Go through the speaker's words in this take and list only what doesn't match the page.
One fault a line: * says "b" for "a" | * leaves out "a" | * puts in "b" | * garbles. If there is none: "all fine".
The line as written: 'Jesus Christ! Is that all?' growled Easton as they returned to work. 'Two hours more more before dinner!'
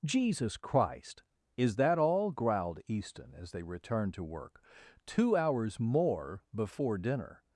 * leaves out "more"